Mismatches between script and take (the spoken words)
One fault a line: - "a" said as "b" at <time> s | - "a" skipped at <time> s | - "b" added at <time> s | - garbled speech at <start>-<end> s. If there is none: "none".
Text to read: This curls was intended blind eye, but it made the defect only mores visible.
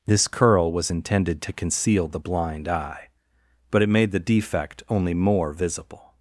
- "curls" said as "curl" at 0.3 s
- "to conceal the" added at 1.4 s
- "mores" said as "more" at 5.1 s